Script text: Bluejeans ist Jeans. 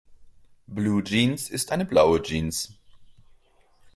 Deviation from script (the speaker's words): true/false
true